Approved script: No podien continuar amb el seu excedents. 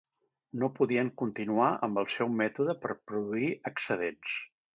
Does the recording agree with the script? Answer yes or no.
no